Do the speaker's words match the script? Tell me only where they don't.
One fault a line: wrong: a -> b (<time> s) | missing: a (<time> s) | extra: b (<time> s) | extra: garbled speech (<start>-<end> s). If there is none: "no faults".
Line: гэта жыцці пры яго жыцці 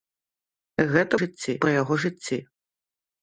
no faults